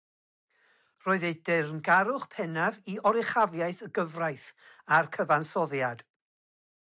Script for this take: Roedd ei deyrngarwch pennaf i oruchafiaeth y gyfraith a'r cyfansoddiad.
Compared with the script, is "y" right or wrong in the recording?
right